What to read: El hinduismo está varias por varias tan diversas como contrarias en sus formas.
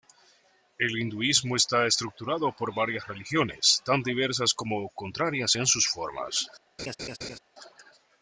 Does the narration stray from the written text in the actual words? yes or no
yes